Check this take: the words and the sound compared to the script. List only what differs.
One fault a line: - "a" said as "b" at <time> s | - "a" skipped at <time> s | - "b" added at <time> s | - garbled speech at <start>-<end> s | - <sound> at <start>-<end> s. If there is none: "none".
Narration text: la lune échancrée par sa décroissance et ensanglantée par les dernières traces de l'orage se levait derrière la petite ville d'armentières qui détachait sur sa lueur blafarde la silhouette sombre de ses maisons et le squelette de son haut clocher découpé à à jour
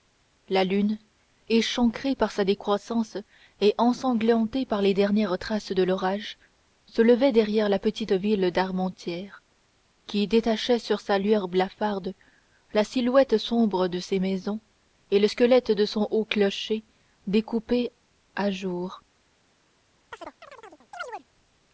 - "à" skipped at 18.5 s
- chirp at 20.1-21.3 s